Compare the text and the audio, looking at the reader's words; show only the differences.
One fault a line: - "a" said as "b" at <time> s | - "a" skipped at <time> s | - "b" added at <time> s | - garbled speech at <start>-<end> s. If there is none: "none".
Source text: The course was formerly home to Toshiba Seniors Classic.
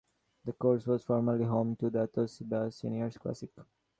- "the" added at 1.9 s